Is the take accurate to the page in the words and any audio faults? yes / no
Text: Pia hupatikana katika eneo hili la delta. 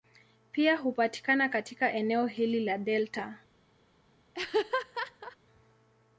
no